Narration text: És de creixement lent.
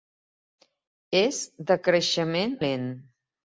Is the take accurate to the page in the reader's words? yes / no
yes